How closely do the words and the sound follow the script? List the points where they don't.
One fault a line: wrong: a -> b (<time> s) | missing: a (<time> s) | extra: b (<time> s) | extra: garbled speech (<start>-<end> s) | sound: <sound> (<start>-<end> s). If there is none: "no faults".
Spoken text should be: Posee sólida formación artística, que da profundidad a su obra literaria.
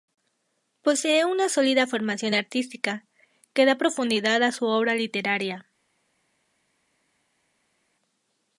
extra: una (1.2 s)